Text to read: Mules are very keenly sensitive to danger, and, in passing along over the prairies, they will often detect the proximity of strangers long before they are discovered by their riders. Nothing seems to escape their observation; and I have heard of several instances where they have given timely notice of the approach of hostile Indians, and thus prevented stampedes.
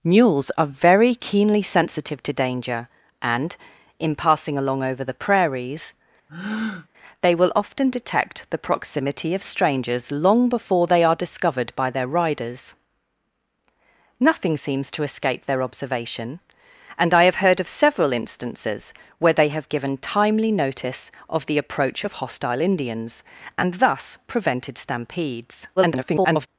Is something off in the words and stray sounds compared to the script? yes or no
yes